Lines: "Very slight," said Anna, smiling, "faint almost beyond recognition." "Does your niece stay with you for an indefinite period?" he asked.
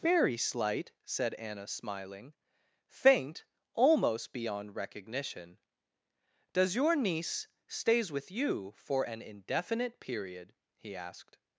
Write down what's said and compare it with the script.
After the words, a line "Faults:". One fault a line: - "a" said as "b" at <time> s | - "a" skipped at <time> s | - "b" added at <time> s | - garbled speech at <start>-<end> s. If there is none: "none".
"Very slight," said Anna, smiling, "faint almost beyond recognition." "Does your niece stays with you for an indefinite period?" he asked.
Faults:
- "stay" said as "stays" at 7.7 s